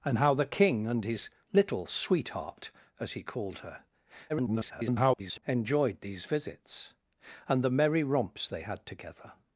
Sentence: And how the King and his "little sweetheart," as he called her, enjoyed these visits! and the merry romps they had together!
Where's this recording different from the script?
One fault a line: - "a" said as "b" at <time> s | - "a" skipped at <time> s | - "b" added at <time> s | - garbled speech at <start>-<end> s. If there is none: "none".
- garbled speech at 4.3-5.4 s